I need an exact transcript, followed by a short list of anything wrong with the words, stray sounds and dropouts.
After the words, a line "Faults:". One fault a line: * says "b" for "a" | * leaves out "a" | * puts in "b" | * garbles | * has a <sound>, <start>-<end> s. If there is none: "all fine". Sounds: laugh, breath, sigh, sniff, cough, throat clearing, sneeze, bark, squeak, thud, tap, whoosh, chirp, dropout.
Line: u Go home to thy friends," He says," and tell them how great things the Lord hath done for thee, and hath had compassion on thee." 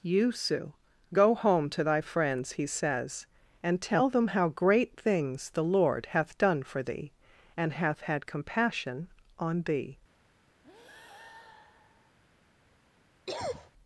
you sue Go home to thy friends," He says," and tell them how great things the Lord hath done for thee, and hath had compassion on thee."
Faults:
* says "you sue" for "u"
* has a breath, 10.6-12.2 s
* has a cough, 13.3-13.7 s